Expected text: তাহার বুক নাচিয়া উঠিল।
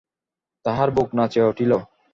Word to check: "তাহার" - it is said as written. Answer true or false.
true